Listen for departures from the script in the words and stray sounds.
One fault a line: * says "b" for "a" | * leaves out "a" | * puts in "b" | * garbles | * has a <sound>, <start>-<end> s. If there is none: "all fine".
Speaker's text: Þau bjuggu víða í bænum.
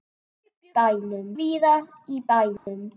* says "bænum" for "bjuggu"
* has a dropout, 2.6-2.7 s